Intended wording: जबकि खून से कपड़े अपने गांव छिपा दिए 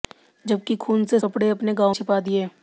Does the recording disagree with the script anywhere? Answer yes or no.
no